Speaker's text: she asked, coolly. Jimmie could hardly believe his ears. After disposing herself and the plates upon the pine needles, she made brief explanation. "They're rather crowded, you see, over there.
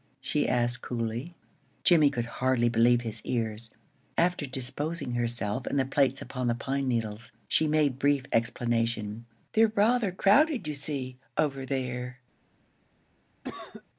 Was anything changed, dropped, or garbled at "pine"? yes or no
no